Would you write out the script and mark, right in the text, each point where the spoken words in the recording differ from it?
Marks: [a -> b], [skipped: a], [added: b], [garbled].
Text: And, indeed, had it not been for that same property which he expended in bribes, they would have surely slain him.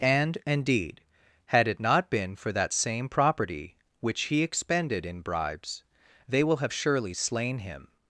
And, indeed, had it not been for that same property which he expended in bribes, they [would -> will] have surely slain him.